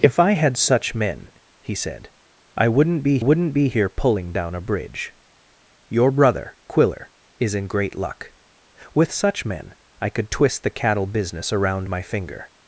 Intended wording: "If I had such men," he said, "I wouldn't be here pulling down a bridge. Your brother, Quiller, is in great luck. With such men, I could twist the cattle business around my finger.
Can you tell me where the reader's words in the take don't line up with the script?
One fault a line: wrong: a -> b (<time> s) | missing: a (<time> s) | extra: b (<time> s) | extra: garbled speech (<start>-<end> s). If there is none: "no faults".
extra: wouldn't be (3.2 s)